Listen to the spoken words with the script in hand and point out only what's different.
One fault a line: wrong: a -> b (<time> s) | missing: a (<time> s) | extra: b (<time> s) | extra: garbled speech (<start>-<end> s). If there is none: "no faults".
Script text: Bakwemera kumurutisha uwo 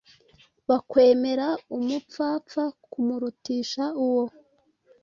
extra: umupfapfa (1.8 s)